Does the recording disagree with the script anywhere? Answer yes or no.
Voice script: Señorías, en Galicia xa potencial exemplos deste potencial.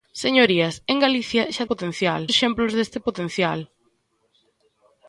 no